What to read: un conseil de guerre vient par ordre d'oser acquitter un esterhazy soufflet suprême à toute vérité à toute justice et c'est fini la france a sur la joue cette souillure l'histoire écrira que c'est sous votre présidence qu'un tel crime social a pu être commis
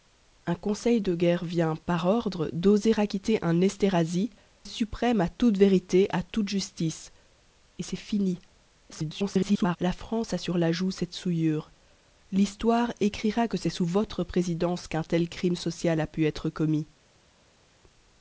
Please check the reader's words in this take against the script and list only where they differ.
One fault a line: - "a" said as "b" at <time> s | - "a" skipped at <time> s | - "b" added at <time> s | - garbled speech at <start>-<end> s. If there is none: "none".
- "soufflet" skipped at 4.3 s
- garbled speech at 8.9-9.8 s